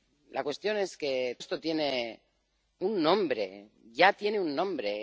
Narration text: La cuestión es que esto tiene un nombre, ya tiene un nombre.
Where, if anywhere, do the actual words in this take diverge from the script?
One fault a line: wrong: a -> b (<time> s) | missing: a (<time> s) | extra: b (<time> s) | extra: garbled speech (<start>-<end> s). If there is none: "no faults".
no faults